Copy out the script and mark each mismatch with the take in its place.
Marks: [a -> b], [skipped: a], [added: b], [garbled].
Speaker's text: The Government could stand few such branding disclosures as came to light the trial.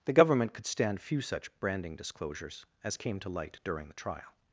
The Government could stand few such branding disclosures as came to light [added: during] the trial.